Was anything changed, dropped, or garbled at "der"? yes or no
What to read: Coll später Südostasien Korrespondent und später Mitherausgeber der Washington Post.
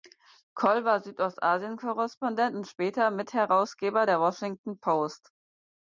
no